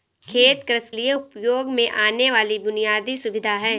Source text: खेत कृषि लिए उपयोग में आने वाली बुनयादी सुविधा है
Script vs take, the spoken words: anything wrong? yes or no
no